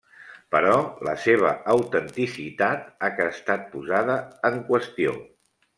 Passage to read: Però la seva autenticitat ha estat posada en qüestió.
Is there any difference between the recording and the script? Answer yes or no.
no